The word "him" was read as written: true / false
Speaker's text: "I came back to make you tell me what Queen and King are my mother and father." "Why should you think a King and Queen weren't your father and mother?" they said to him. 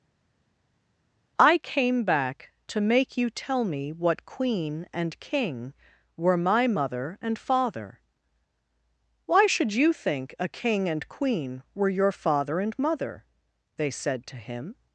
true